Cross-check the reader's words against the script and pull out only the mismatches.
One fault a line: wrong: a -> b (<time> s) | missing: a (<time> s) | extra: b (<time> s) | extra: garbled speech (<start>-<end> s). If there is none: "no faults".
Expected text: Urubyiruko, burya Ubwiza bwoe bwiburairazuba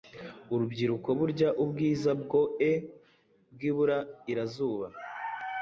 no faults